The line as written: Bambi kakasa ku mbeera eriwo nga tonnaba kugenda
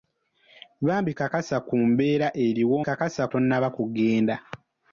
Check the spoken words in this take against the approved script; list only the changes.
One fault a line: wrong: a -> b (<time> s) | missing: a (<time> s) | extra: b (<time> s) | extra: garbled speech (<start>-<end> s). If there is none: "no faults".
wrong: nga -> kakasa (2.9 s)